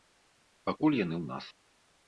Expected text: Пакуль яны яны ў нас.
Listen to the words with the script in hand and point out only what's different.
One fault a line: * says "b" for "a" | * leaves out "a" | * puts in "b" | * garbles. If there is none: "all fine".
* leaves out "яны"